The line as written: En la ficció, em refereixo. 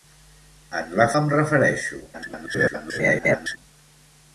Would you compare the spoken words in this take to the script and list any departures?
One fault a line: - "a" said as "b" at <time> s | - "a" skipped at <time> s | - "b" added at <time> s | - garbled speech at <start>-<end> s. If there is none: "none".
- "ficció" skipped at 1.1 s
- garbled speech at 2.1-3.6 s